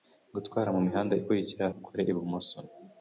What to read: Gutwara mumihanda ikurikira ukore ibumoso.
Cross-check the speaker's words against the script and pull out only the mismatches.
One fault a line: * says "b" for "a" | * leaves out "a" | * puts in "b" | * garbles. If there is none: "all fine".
all fine